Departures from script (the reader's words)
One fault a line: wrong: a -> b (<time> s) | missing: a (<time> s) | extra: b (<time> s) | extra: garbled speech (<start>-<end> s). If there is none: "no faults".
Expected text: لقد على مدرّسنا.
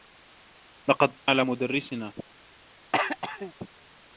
no faults